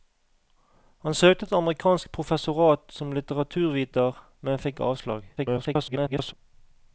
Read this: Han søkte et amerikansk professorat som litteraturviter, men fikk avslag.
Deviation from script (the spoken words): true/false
true